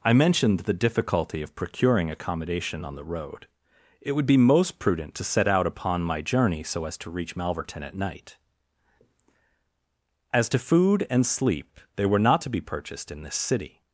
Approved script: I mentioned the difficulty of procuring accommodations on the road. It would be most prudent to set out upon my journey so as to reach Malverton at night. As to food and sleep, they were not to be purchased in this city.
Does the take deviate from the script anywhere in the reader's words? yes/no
yes